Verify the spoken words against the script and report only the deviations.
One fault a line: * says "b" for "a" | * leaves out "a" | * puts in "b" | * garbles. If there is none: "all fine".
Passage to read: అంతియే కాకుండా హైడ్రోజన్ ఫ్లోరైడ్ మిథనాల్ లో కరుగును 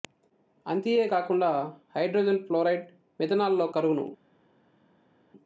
all fine